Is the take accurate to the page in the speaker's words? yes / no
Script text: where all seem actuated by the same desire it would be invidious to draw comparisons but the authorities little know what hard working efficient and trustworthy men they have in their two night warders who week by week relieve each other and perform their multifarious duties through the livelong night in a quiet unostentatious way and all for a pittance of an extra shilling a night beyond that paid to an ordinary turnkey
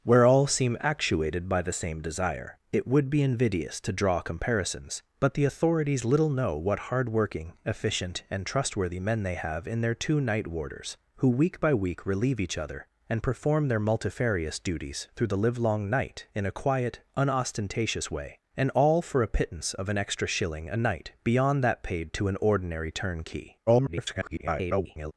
no